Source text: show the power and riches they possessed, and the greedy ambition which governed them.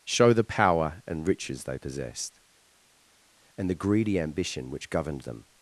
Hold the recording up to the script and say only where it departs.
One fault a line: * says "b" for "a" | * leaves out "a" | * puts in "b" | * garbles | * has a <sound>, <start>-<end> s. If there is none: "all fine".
all fine